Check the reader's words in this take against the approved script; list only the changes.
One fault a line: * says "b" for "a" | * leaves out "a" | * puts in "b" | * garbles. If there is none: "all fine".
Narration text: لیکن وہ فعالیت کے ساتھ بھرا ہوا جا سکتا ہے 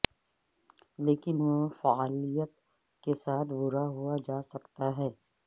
all fine